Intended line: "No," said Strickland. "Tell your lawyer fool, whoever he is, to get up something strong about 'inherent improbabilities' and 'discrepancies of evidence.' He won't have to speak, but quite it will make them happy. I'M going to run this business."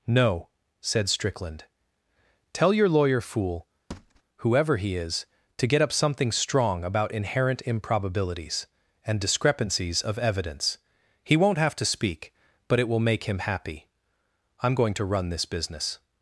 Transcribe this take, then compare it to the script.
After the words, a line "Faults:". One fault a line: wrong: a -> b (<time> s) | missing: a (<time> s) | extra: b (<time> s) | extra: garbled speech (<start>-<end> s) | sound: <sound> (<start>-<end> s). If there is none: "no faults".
"No," said Strickland. "Tell your lawyer fool, whoever he is, to get up something strong about 'inherent improbabilities' and 'discrepancies of evidence.' He won't have to speak, but it will make him happy. I'M going to run this business."
Faults:
sound: thud (3.9-4.2 s)
missing: quite (12.8 s)
wrong: them -> him (13.2 s)